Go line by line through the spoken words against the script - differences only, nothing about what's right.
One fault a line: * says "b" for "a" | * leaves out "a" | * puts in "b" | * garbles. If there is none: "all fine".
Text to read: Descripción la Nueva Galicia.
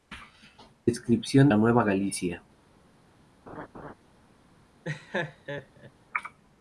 all fine